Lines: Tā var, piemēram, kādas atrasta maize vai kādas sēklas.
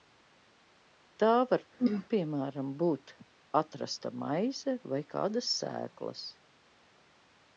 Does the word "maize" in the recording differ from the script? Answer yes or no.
no